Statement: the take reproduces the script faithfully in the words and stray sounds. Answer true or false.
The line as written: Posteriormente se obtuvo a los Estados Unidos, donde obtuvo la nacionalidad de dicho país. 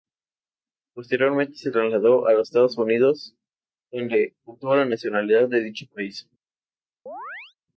false